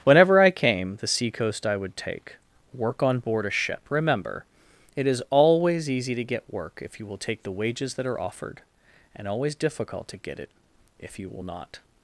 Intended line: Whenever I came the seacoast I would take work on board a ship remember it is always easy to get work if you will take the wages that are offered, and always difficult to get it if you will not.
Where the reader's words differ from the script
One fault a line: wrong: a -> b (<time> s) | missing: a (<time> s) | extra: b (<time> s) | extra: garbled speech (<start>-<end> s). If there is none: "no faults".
no faults